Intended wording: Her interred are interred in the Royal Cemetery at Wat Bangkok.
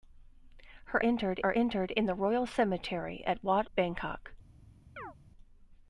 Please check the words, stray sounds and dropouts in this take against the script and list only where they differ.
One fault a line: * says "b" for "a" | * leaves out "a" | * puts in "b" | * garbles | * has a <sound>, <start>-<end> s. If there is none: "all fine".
* has a chirp, 5.0-5.1 s